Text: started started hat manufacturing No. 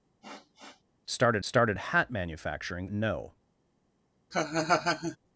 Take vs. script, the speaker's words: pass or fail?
pass